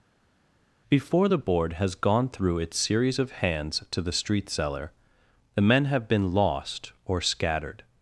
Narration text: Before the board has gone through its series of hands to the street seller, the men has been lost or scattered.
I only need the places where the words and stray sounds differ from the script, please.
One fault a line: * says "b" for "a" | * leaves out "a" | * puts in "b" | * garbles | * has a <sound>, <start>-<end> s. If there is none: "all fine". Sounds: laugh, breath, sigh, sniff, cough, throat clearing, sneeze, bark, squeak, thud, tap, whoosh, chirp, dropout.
* says "have" for "has"